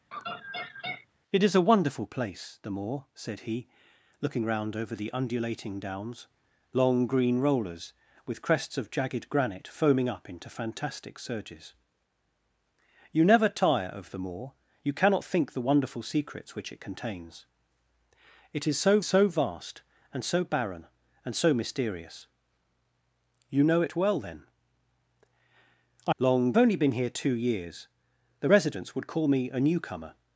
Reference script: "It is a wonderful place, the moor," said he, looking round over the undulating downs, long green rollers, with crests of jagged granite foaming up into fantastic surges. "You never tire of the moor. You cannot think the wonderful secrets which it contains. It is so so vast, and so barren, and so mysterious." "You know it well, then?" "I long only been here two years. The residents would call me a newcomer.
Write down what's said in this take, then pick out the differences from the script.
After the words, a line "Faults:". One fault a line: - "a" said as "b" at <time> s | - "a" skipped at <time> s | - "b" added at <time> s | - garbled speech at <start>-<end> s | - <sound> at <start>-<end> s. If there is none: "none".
"It is a wonderful place, the moor," said he, looking round over the undulating downs, long green rollers, with crests of jagged granite foaming up into fantastic surges. "You never tire of the moor. You cannot think the wonderful secrets which it contains. It is so so vast, and so barren, and so mysterious." "You know it well, then?" "I long only been here two years. The residents would call me a newcomer.
Faults:
- laugh at 0.1-1.1 s